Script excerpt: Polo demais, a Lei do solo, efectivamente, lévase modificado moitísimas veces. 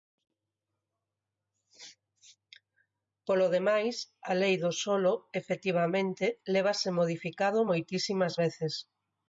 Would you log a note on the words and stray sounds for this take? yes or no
no